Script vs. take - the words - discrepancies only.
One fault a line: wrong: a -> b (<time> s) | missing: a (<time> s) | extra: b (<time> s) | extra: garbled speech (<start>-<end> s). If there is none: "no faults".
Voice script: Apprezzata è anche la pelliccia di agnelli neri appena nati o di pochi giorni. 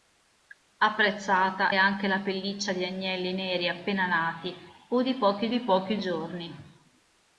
missing: è (1.7 s)
extra: di pochi (5.5 s)